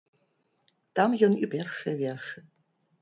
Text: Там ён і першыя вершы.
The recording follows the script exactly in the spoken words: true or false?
true